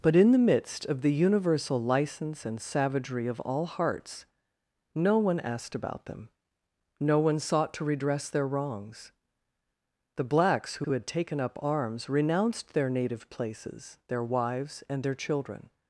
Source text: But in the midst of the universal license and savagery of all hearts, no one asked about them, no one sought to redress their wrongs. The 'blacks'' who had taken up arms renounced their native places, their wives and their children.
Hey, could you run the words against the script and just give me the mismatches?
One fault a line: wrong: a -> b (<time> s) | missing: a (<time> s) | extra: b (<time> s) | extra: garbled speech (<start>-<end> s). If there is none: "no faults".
extra: who (10.8 s)